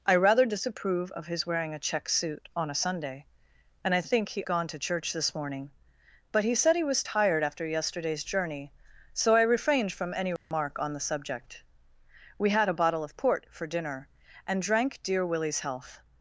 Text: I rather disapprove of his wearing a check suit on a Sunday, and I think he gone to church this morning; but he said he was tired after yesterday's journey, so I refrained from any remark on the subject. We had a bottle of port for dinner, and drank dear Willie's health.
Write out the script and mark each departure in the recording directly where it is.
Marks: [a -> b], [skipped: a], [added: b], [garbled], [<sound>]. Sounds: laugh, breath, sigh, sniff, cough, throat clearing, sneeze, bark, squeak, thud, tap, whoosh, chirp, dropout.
I rather disapprove of his wearing a check suit on a Sunday, and I think he gone to church this morning; but he said he was tired after yesterday's journey, so I refrained from any remark [dropout] on the subject. We had a bottle of port for dinner, and drank dear Willie's health.